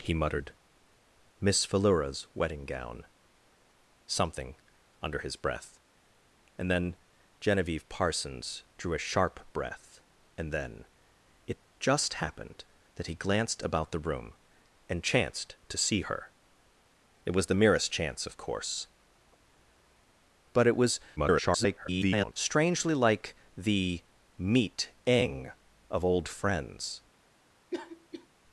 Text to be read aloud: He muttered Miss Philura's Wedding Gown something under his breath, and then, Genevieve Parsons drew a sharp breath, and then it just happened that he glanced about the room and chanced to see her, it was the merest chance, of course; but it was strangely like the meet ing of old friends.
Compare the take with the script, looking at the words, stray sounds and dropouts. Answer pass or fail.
fail